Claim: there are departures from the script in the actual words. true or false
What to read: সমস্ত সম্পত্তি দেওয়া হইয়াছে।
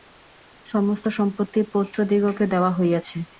true